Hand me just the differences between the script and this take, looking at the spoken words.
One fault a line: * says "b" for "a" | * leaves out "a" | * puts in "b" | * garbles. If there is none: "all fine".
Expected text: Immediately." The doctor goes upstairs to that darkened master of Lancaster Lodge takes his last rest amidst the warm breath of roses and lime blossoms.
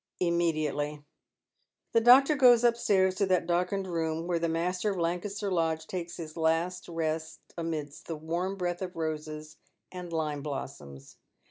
* puts in "room where the"